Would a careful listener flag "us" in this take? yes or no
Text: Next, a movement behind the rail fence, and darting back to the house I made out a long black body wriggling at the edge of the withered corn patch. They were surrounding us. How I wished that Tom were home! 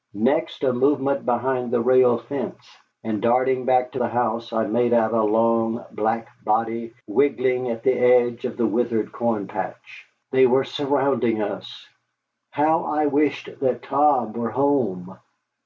no